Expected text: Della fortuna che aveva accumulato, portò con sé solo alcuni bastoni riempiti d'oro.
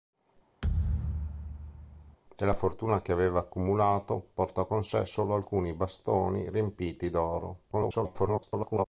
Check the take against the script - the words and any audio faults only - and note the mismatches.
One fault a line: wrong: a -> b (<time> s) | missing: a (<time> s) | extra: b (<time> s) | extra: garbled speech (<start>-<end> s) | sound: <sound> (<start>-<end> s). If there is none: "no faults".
sound: thud (0.6-2.2 s)
extra: garbled speech (7.7-8.9 s)